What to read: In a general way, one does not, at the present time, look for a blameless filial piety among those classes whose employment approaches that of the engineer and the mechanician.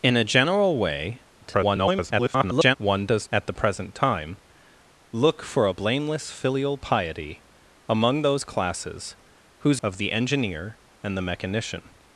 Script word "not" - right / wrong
wrong